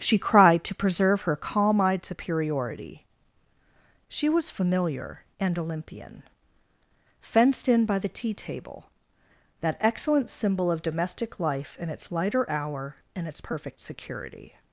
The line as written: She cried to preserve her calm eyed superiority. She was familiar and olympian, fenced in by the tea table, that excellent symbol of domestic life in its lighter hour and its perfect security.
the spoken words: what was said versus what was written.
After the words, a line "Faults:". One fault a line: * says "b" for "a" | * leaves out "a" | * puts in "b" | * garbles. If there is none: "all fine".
She cried to preserve her calm eyed superiority. She was familiar and olympian, fenced in by the tea table, that excellent symbol of domestic life in its lighter hour and its perfect security.
Faults:
all fine